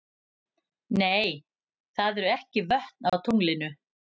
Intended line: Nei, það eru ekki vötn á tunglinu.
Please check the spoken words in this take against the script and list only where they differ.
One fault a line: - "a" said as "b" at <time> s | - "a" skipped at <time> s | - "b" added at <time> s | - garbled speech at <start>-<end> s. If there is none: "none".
none